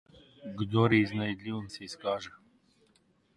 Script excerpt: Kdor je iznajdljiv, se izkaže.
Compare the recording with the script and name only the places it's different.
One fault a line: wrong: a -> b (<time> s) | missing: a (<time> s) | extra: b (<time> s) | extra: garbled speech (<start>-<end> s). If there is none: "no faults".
no faults